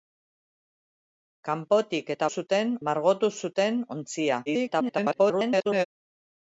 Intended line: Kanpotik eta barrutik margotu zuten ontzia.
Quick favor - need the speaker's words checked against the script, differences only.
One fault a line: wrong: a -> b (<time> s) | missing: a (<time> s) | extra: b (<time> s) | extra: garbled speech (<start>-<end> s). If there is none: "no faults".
wrong: barrutik -> zuten (2.4 s)
extra: garbled speech (4.5-5.9 s)